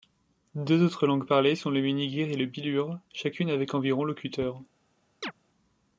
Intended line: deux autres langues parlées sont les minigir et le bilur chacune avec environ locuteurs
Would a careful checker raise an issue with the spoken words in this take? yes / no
yes